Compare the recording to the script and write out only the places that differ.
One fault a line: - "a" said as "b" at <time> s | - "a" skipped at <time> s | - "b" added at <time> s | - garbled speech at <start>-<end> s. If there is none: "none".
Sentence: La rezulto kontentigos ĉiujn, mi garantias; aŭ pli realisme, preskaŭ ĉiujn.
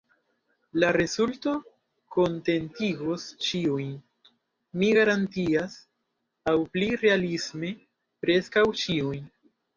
none